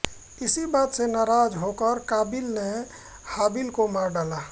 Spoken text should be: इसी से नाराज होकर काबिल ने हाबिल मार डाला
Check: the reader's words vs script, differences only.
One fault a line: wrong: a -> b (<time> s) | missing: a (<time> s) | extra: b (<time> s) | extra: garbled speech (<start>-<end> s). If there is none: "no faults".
extra: बात (0.7 s)
extra: को (3.7 s)